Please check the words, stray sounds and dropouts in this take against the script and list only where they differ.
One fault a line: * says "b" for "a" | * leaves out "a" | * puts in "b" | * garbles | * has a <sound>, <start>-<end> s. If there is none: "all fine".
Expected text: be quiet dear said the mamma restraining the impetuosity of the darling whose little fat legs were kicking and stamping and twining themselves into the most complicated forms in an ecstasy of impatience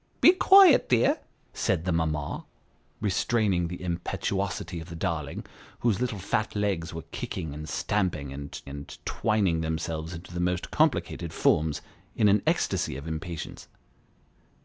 * puts in "and"